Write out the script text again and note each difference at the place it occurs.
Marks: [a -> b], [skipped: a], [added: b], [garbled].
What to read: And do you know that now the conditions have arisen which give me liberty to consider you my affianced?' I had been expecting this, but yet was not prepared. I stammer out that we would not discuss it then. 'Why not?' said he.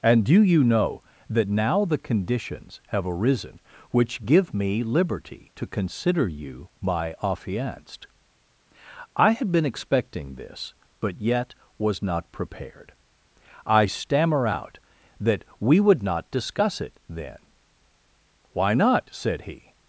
And do you know that now the conditions have arisen which give me liberty to consider you my affianced?' I had been expecting this, but yet was not prepared. I stammer out that we would not discuss it then. 'Why not?' said he.